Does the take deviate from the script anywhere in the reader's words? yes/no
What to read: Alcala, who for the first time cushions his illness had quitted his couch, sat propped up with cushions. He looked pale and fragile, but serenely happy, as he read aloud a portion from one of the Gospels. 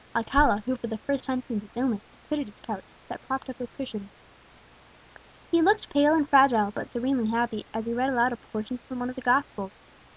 yes